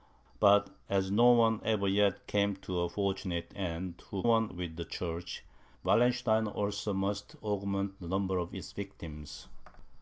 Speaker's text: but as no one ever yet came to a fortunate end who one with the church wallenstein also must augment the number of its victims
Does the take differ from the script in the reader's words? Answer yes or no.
no